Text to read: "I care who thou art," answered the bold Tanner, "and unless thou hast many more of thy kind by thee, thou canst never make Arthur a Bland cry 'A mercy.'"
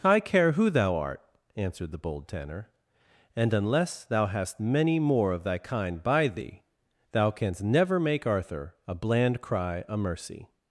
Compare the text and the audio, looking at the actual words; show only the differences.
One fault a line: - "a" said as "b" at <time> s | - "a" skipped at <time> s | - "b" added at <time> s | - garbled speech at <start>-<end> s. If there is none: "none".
none